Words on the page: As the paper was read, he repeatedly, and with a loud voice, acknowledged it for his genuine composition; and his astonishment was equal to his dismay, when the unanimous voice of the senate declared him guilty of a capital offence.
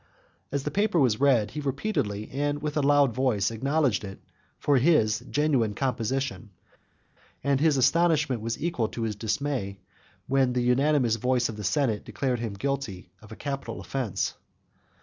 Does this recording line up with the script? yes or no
yes